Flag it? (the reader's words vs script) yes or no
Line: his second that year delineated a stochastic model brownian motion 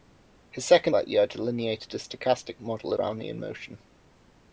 no